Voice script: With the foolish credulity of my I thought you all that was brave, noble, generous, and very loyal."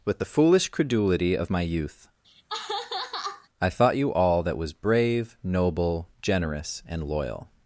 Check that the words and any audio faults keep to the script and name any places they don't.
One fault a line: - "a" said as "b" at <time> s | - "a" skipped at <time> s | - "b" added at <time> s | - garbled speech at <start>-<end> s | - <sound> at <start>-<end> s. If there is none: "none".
- "youth" added at 1.6 s
- laugh at 2.2-3.5 s
- "very" skipped at 7.1 s